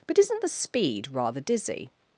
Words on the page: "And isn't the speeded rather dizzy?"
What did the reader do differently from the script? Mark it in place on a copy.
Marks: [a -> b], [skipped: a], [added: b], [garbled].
["And -> But] isn't the [speeded -> speed] rather dizzy?"